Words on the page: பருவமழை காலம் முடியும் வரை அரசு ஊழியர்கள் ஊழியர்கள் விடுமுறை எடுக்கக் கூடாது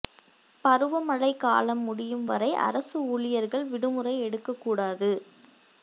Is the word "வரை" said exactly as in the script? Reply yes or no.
yes